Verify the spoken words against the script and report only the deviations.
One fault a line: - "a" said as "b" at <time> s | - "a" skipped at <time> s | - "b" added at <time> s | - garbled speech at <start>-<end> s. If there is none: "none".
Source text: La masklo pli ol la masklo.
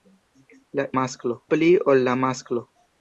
none